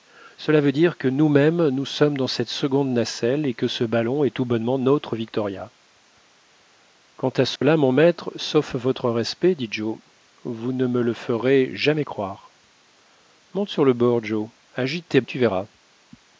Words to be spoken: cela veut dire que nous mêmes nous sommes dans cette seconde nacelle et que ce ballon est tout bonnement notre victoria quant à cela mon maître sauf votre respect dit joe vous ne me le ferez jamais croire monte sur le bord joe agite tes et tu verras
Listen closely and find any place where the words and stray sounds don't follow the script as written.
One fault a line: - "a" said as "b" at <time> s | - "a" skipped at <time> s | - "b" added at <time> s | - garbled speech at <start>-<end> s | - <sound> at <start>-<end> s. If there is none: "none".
- dropout at 7.6-7.6 s